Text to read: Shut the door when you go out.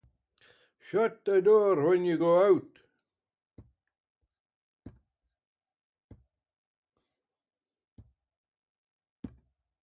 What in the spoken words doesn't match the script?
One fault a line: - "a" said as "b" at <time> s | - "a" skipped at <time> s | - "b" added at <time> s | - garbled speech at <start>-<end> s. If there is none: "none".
none